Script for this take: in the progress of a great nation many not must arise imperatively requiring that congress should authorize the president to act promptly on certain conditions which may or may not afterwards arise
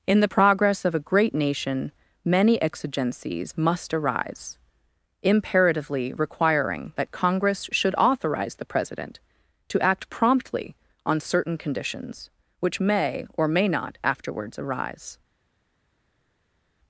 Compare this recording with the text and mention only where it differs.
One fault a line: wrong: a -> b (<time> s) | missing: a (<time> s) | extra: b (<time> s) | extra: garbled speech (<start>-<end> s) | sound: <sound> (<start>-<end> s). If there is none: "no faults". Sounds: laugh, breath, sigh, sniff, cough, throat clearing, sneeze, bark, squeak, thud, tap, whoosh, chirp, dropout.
wrong: not -> exigencies (2.6 s)